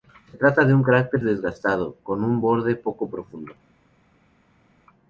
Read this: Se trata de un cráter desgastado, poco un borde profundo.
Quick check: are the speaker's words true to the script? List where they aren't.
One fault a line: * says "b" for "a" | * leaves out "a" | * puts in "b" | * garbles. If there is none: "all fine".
* says "con" for "poco"
* puts in "poco"